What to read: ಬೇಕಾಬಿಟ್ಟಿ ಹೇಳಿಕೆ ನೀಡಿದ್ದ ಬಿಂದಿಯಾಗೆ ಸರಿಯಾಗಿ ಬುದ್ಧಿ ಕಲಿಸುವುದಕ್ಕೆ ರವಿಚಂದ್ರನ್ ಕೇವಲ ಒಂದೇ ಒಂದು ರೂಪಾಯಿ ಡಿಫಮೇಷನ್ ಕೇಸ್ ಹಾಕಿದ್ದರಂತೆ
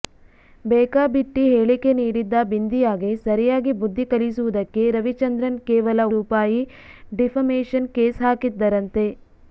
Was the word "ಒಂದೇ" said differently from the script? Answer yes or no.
yes